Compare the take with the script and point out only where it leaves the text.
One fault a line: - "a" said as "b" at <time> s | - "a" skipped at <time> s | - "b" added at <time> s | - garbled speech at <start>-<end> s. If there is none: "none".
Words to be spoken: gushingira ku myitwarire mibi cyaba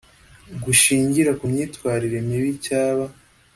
none